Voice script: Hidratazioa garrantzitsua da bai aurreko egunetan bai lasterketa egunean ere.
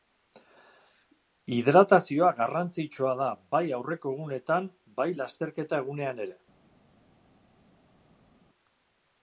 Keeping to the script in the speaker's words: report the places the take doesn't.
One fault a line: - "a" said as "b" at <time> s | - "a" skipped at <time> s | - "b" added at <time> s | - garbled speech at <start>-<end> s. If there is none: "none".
none